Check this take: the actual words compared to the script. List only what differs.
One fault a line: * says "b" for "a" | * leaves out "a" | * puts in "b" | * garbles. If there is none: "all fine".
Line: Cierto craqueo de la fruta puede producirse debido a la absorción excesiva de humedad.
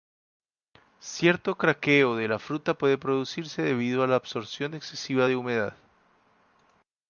all fine